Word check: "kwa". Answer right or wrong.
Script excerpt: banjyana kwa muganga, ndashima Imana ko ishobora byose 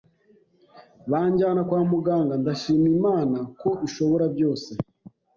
right